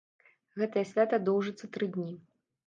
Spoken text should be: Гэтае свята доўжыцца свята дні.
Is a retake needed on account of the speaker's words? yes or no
yes